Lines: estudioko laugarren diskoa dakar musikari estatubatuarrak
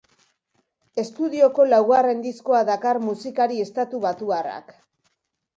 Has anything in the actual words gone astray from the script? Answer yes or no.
no